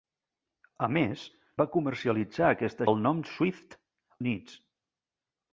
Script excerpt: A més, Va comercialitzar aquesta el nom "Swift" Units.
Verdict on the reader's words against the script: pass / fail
pass